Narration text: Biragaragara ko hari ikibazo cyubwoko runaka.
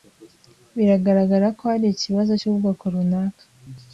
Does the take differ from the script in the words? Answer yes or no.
no